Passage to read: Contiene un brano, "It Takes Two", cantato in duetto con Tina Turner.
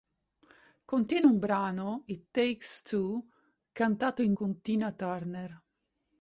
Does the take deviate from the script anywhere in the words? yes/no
yes